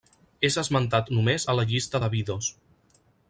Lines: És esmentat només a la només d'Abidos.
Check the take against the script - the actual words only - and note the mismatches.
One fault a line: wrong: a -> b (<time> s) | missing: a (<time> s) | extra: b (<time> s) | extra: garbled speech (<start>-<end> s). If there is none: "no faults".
wrong: només -> llista (1.7 s)